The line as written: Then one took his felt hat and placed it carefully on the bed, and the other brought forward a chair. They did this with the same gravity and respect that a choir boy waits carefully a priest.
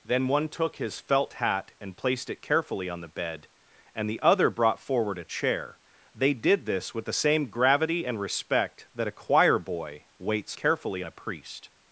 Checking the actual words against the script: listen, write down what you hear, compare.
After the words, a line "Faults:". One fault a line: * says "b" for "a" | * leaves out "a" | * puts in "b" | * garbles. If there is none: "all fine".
Then one took his felt hat and placed it carefully on the bed, and the other brought forward a chair. They did this with the same gravity and respect that a choir boy waits carefully a priest.
Faults:
all fine